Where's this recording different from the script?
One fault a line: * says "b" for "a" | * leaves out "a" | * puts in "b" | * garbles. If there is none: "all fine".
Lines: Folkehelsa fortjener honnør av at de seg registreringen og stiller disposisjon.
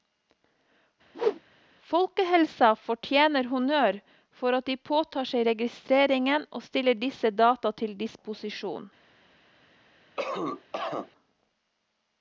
* says "for" for "av"
* puts in "påtar"
* puts in "disse data til"